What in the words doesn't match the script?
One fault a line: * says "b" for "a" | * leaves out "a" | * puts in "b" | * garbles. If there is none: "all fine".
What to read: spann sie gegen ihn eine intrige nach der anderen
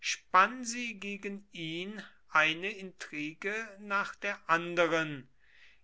all fine